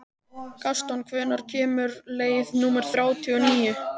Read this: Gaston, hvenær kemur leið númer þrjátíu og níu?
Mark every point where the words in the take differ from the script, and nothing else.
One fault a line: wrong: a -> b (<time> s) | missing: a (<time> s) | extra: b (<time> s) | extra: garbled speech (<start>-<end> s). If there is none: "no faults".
no faults